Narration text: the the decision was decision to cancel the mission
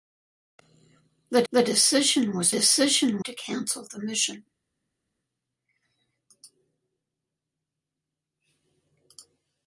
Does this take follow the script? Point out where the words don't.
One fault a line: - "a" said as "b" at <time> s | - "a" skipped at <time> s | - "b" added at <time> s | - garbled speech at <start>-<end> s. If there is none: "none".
none